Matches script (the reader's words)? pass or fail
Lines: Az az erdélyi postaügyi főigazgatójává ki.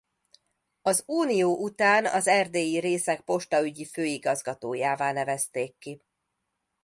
fail